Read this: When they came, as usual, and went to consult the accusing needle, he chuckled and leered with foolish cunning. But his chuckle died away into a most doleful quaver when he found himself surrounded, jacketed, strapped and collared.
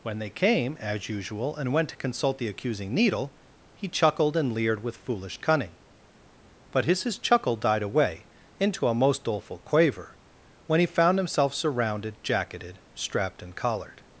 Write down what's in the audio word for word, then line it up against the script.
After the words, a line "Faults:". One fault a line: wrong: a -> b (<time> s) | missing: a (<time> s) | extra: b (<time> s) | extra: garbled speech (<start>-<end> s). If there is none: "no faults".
When they came, as usual, and went to consult the accusing needle, he chuckled and leered with foolish cunning. But his his chuckle died away into a most doleful quaver when he found himself surrounded, jacketed, strapped and collared.
Faults:
extra: his (7.0 s)